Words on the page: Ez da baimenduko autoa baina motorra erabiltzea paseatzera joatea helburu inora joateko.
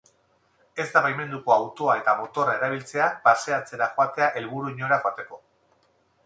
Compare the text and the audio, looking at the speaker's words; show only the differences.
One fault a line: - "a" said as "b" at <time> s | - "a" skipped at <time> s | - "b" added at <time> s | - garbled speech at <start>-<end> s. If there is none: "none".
- "baina" said as "eta" at 2.0 s